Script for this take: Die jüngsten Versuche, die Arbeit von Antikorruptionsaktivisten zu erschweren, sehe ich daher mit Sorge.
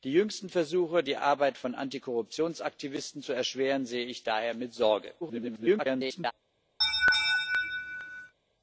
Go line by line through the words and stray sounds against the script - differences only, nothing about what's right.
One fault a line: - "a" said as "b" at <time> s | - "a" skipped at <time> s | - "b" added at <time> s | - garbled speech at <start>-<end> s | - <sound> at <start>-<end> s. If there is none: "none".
- garbled speech at 5.2-6.3 s
- laugh at 6.8-8.3 s